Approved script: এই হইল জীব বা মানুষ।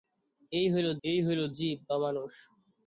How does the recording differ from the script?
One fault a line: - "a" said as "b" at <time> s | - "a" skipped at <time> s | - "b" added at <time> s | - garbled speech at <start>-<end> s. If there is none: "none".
- "এই হইল" added at 1.0 s